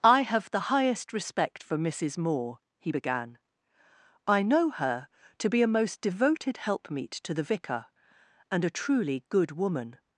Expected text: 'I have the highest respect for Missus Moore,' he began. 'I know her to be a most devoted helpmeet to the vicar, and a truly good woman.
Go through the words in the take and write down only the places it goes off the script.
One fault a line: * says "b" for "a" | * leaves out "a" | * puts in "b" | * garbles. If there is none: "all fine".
all fine